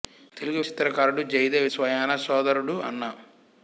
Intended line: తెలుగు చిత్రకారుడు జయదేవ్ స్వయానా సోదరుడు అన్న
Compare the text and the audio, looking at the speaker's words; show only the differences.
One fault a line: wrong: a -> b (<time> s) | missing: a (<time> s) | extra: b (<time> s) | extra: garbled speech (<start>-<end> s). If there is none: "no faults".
no faults